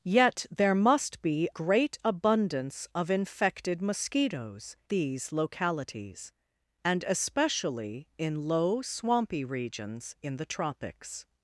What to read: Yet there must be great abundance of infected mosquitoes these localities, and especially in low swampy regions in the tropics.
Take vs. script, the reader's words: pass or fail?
pass